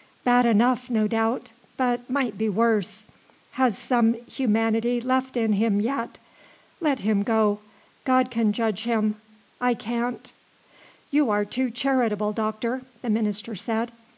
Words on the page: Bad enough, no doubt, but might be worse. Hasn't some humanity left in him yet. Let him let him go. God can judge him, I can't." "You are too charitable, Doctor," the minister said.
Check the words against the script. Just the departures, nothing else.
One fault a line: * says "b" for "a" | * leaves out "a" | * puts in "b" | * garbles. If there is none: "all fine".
* says "Has" for "Hasn't"
* leaves out "let him"